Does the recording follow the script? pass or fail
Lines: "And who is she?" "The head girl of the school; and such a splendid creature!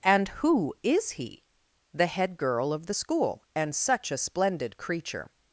fail